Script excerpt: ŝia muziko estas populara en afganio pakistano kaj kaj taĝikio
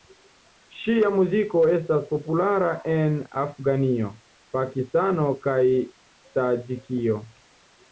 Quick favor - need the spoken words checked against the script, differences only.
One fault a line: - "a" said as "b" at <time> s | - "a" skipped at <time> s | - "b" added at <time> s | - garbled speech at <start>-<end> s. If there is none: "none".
- "kaj" skipped at 5.6 s